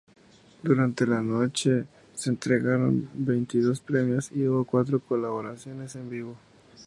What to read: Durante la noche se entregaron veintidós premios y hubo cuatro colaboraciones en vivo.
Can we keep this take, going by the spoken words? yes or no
yes